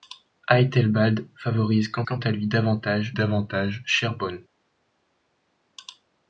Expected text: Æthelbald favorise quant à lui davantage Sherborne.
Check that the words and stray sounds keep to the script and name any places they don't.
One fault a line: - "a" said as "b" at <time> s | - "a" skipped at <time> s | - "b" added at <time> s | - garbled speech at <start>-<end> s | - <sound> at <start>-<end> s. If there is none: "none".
- "quant" added at 2.0 s
- "davantage" added at 3.1 s